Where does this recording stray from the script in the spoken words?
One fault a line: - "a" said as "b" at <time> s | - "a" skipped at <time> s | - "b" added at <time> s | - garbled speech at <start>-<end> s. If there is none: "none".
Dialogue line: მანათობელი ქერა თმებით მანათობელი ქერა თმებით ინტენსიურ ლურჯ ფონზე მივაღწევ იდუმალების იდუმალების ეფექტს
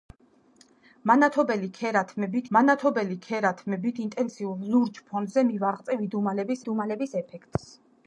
none